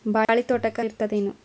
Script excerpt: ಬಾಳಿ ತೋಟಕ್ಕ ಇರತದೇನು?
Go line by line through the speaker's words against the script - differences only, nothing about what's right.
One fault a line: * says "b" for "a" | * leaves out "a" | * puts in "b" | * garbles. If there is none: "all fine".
all fine